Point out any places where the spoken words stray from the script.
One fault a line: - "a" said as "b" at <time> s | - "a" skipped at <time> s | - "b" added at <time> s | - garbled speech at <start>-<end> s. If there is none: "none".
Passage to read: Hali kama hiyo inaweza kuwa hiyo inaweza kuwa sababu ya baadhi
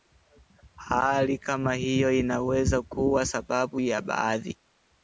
- "hiyo inaweza kuwa" skipped at 3.2 s